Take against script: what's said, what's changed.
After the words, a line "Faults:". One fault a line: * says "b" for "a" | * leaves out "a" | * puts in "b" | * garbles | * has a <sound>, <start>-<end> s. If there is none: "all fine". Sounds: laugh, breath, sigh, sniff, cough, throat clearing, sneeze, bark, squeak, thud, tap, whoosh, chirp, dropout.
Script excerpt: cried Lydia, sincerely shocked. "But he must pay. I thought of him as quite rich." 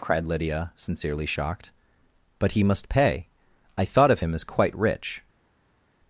cried Lydia, sincerely shocked. "But he must pay. I thought of him as quite rich."
Faults:
all fine